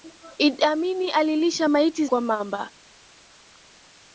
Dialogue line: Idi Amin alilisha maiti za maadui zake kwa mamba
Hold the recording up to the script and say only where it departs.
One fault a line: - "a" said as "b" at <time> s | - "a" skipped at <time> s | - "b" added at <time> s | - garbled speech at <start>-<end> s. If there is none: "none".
- "za maadui zake" skipped at 2.1 s